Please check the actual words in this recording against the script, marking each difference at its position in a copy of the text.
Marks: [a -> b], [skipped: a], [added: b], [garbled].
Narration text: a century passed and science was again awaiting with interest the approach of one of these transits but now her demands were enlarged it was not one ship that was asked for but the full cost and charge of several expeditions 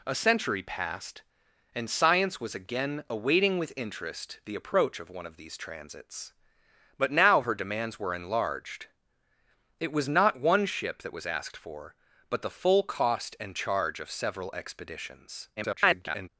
a century passed and science was again awaiting with interest the approach of one of these transits but now her demands were enlarged it was not one ship that was asked for but the full cost and charge of several expeditions [garbled]